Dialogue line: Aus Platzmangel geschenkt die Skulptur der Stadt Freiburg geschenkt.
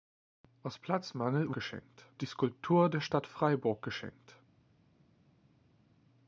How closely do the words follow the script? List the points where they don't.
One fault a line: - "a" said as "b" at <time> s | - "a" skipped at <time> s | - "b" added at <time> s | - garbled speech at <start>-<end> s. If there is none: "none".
none